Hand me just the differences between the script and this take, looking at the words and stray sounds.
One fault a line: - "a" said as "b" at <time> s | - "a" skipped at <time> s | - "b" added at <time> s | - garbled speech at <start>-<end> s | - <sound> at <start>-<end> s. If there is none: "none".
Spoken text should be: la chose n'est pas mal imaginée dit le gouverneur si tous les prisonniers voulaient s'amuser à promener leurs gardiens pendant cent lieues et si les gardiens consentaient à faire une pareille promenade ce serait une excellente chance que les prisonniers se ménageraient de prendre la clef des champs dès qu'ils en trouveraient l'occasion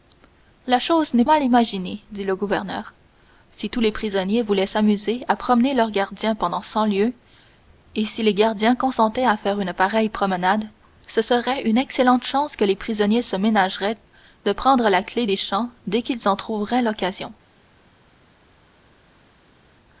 - "pas" skipped at 1.2 s